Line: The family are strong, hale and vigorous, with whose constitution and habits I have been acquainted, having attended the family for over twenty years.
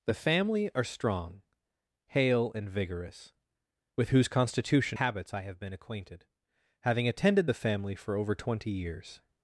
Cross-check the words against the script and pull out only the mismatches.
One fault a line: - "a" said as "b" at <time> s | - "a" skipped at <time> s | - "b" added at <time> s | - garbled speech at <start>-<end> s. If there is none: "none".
- "and" skipped at 5.0 s